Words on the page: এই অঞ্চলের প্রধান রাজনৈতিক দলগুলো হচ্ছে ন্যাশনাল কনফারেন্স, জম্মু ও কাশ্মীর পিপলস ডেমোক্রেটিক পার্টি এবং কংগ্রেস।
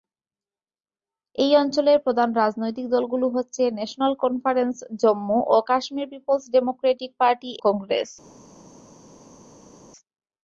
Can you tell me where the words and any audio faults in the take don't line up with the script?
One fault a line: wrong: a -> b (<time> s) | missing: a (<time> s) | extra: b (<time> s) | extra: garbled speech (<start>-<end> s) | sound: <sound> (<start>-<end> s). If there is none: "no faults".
missing: এবং (7.5 s)